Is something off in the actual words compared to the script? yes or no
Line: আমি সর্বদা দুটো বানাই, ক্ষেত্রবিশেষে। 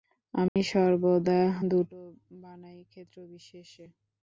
no